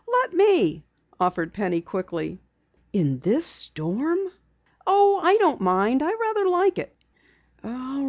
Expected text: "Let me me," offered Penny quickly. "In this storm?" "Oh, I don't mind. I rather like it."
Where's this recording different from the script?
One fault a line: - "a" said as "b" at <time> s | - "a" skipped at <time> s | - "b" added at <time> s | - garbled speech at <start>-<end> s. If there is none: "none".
- "me" skipped at 0.8 s